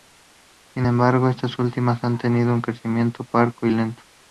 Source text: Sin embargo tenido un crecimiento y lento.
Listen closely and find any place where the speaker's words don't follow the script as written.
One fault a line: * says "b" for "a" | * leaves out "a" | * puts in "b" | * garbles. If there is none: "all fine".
* puts in "estas últimas han"
* puts in "parco"